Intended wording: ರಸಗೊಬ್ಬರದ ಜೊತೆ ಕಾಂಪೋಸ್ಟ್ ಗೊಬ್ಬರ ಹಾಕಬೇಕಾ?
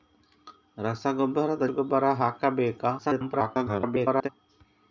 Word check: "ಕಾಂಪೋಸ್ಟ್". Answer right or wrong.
wrong